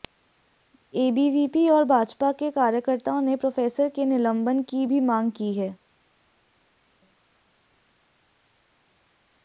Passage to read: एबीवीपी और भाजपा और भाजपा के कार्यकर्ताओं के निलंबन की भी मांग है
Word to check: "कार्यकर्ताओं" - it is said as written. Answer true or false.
false